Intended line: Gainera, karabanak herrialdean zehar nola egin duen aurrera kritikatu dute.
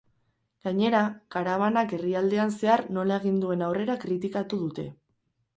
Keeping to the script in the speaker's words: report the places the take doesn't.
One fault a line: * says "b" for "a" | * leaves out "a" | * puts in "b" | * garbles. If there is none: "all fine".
all fine